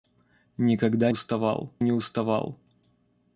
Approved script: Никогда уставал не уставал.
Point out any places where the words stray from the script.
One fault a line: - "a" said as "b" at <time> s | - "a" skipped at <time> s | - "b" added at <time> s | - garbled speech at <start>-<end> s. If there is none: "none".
none